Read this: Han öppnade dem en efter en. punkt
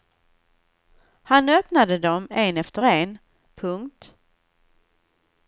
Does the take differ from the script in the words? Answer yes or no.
no